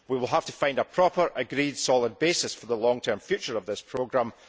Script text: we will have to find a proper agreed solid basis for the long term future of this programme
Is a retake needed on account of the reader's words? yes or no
no